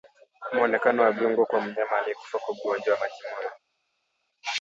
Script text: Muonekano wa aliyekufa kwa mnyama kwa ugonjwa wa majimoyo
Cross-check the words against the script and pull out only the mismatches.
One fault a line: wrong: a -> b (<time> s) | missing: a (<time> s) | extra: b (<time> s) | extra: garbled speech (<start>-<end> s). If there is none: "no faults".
wrong: aliyekufa -> viungo (1.1 s)
extra: aliyekufa (2.0 s)